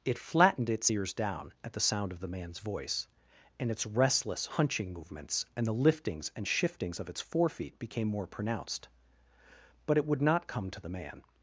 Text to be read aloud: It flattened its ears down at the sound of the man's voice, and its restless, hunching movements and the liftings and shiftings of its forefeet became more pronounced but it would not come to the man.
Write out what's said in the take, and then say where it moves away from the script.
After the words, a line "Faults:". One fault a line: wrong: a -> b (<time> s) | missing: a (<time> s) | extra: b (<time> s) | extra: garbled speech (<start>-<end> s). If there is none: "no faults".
It flattened its ears down at the sound of the man's voice, and its restless, hunching movements and the liftings and shiftings of its forefeet became more pronounced but it would not come to the man.
Faults:
no faults